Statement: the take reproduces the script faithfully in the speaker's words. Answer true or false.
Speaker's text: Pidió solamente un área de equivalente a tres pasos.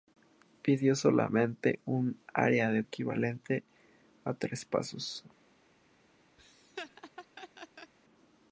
true